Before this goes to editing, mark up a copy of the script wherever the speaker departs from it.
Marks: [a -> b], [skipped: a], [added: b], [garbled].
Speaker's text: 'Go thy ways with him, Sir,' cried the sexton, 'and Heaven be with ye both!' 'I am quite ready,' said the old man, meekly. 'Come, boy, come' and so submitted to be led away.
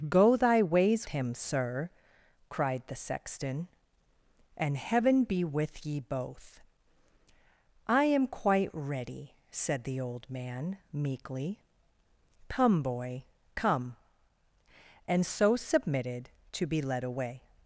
'Go thy ways [skipped: with] him, Sir,' cried the sexton, 'and Heaven be with ye both!' 'I am quite ready,' said the old man, meekly. 'Come, boy, come' and so submitted to be led away.